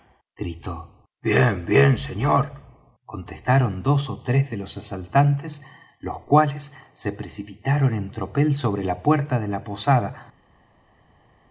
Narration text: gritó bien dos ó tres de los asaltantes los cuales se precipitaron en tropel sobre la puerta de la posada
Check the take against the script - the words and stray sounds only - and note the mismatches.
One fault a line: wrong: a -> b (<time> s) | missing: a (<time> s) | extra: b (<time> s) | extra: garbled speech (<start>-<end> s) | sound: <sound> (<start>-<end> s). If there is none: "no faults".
extra: bien señor contestaron (1.6 s)